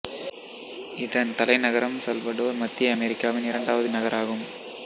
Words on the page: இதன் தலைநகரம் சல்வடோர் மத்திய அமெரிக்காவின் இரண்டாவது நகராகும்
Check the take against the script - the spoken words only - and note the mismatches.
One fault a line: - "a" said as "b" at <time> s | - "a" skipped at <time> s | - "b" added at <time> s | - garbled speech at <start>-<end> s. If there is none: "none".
none